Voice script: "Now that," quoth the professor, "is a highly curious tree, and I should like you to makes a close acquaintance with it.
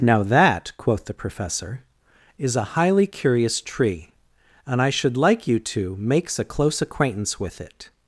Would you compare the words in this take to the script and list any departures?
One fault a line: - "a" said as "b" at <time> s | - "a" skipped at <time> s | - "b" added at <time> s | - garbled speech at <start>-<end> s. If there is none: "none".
none